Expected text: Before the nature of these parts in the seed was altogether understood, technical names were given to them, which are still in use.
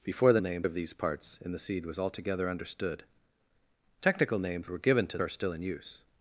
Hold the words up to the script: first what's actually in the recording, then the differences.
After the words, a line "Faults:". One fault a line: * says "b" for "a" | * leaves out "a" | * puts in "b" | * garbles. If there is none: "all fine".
Before the names of these parts in the seed was altogether understood, technical names were given to are still in use.
Faults:
* says "names" for "nature"
* leaves out "them which"